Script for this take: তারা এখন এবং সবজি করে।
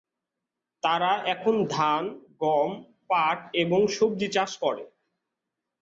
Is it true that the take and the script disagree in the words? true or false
true